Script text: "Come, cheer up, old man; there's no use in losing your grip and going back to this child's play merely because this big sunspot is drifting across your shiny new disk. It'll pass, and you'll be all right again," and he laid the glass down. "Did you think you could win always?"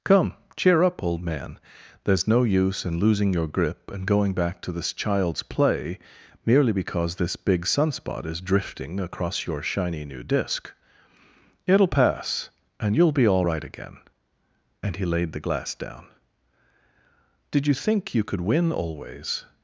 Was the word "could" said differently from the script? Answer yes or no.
no